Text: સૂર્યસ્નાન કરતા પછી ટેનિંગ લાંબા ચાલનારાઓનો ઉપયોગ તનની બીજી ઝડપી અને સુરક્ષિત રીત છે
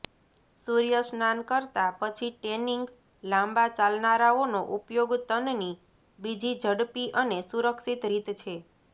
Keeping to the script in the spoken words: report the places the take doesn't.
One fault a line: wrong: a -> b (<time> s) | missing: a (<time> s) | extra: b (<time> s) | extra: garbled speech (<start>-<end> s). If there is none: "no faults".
no faults